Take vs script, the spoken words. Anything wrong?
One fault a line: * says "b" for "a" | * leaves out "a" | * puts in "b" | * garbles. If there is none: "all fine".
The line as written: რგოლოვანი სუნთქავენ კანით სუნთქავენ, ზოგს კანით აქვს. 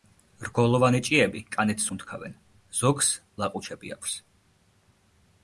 * says "ჭიები" for "სუნთქავენ"
* says "ლაყუჩები" for "კანით"